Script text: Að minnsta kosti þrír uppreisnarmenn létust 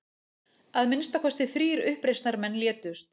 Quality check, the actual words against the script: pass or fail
pass